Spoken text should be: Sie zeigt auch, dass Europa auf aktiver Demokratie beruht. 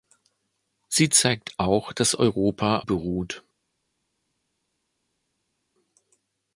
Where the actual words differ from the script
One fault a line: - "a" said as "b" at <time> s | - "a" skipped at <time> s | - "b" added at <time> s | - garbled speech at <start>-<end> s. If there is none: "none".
- "auf aktiver Demokratie" skipped at 2.8 s